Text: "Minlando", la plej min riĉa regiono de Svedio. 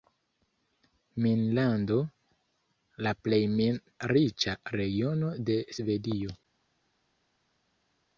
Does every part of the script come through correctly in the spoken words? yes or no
yes